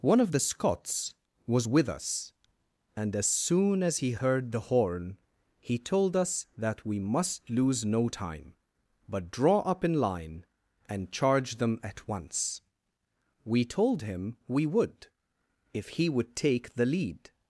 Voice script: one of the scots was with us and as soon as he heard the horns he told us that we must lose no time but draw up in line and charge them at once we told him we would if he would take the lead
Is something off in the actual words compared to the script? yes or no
yes